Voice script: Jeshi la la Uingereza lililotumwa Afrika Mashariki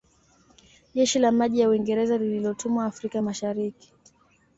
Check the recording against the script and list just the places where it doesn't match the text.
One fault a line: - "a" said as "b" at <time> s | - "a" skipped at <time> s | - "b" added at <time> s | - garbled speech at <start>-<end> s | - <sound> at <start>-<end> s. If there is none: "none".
- "maji" added at 1.3 s